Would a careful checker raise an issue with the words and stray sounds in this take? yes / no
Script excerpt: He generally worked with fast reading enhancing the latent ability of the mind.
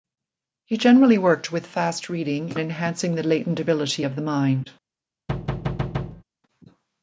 yes